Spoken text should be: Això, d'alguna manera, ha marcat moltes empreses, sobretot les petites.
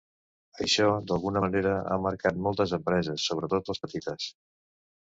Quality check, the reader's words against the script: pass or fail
pass